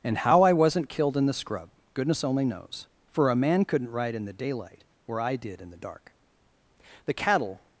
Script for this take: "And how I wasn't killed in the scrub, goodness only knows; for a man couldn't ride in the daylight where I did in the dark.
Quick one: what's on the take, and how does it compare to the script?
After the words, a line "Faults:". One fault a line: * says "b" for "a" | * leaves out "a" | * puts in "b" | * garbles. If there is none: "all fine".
"And how I wasn't killed in the scrub, goodness only knows; for a man couldn't ride in the daylight where I did in the dark. The cattle
Faults:
* puts in "The cattle"